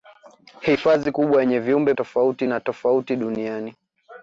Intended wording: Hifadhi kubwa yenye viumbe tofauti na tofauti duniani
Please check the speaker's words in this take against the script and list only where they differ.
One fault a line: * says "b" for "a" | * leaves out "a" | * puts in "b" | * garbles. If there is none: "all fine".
all fine